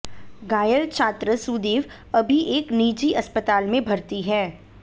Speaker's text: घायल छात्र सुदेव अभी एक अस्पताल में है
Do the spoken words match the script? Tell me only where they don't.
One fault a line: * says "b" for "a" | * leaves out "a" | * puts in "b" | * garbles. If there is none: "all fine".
* puts in "निजी"
* puts in "भर्ती"